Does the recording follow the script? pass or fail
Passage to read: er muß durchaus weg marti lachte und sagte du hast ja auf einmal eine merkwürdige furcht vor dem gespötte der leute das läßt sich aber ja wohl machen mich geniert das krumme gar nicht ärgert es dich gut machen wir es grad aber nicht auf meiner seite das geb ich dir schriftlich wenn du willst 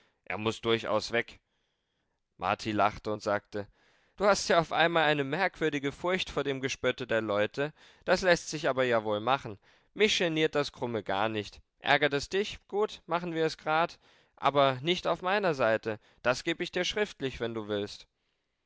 pass